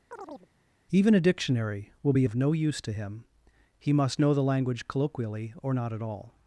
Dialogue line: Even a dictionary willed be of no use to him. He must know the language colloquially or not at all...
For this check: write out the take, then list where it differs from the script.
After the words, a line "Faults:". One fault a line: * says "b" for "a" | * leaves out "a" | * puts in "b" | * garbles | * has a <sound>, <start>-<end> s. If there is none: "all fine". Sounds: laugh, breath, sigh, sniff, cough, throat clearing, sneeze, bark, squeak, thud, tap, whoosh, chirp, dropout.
Even a dictionary will be of no use to him. He must know the language colloquially or not at all...
Faults:
* has a chirp, 0.1-0.5 s
* says "will" for "willed"